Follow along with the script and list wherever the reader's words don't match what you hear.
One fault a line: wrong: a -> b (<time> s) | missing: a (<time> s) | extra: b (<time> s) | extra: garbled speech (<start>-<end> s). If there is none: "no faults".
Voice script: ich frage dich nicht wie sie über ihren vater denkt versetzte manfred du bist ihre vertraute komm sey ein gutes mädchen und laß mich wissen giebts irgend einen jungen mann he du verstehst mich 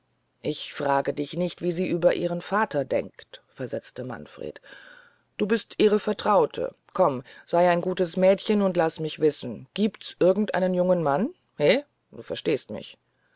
no faults